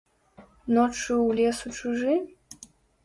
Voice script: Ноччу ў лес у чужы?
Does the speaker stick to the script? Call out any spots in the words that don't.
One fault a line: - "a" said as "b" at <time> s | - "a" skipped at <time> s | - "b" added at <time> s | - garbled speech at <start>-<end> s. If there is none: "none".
none